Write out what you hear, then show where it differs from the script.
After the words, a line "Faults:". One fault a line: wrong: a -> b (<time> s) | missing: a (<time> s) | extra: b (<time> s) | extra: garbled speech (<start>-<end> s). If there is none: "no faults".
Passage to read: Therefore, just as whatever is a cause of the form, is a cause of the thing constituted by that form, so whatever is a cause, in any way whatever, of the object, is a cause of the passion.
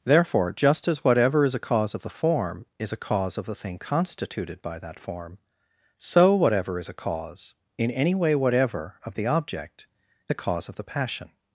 Therefore, just as whatever is a cause of the form, is a cause of the thing constituted by that form, so whatever is a cause, in any way whatever, of the object, a cause of the passion.
Faults:
missing: is (9.9 s)